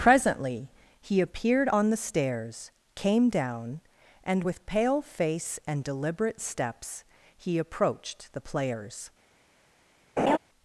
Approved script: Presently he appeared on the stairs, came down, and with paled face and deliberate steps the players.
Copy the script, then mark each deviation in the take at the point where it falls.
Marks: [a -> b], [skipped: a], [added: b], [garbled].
Presently he appeared on the stairs, came down, and with [paled -> pale] face and deliberate steps [added: he approached] the players.